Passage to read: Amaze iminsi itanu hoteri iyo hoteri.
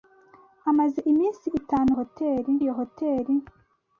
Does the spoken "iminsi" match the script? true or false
true